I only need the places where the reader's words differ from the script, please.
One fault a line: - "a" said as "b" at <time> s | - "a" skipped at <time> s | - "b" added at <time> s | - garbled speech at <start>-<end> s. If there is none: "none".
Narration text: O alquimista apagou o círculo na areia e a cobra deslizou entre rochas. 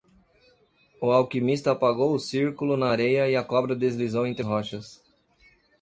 none